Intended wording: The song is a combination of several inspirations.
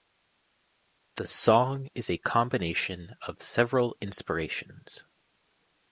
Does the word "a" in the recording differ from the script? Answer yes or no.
no